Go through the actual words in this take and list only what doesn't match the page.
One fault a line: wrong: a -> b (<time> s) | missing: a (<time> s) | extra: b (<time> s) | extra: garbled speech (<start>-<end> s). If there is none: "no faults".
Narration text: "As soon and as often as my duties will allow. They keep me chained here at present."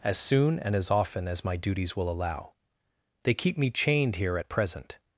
no faults